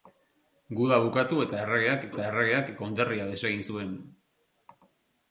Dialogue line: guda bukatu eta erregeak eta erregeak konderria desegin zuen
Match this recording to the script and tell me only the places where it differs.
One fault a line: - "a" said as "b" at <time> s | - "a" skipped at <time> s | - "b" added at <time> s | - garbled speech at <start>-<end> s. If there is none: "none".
none